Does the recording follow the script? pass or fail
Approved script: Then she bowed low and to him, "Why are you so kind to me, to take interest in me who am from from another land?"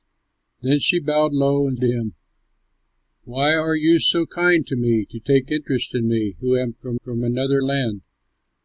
pass